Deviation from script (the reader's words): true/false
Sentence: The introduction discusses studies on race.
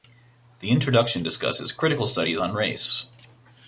true